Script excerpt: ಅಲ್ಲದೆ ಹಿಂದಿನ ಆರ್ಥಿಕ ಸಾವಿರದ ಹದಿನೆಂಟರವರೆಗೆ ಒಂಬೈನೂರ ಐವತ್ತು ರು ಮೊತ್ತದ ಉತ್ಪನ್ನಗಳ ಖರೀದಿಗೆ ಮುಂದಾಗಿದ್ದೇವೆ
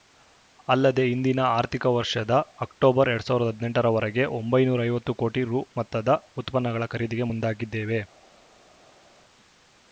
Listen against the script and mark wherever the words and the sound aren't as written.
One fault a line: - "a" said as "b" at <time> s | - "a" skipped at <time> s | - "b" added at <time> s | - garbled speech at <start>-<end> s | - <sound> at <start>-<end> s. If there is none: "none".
- "ವರ್ಷದ ಅಕ್ಟೋಬರ್ ಎರಡ್" added at 1.9 s
- "ಕೋಟಿ" added at 5.2 s